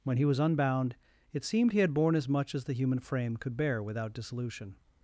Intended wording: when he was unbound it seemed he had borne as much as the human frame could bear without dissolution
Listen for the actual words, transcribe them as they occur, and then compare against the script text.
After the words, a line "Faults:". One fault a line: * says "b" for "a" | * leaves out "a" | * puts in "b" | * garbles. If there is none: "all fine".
when he was unbound it seemed he had borne as much as the human frame could bear without dissolution
Faults:
all fine